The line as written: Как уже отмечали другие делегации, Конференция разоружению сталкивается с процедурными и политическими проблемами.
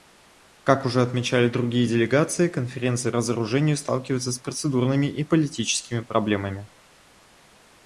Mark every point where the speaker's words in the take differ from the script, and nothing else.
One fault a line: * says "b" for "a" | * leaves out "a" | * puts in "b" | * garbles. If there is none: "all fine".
all fine